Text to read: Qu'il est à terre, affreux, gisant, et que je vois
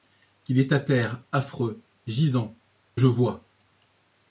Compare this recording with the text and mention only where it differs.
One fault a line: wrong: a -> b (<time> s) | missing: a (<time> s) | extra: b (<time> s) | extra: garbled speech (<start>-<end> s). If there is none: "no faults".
missing: et que (2.6 s)